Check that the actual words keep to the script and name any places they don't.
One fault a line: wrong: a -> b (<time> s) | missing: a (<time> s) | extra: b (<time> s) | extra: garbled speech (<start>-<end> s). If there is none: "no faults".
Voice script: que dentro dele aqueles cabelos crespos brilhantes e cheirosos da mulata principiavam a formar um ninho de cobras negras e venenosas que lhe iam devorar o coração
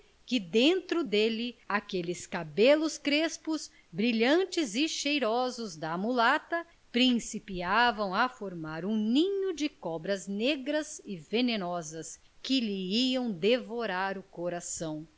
no faults